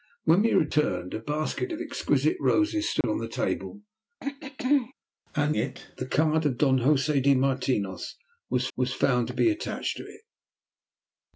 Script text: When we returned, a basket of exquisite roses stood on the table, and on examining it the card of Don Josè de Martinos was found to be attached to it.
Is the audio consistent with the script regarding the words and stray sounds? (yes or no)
no